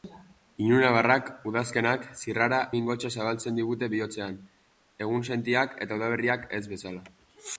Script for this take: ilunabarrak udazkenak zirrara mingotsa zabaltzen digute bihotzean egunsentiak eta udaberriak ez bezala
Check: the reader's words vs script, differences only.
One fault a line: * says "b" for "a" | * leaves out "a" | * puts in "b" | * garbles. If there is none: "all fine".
all fine